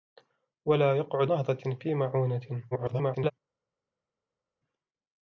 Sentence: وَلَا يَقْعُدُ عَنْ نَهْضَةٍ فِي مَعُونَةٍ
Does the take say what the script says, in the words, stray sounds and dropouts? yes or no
no